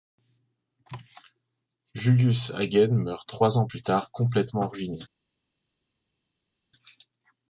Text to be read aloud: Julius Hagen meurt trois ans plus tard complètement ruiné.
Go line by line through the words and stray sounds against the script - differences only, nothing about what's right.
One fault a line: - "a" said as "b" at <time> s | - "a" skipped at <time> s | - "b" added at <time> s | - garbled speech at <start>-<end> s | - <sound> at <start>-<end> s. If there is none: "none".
none